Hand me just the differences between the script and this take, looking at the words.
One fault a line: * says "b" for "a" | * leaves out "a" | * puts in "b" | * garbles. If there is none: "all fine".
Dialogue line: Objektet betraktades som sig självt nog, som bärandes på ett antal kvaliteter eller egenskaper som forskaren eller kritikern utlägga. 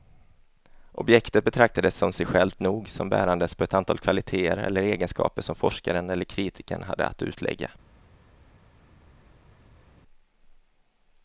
* puts in "hade att"